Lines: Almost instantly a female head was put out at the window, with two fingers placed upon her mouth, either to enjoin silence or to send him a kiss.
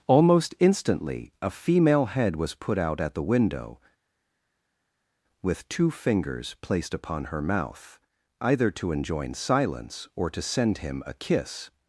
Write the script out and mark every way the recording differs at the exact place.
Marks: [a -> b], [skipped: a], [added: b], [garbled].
Almost instantly a female head was put out at the window, with two fingers placed upon her mouth, either to enjoin silence or to send him a kiss.